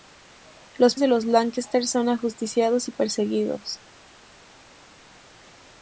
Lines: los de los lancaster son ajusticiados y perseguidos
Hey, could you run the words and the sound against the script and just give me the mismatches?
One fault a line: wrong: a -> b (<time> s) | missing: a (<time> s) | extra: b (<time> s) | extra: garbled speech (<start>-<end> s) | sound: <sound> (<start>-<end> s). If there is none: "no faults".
no faults